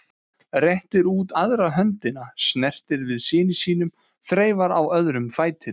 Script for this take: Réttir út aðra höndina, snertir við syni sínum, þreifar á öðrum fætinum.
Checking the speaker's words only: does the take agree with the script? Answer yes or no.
yes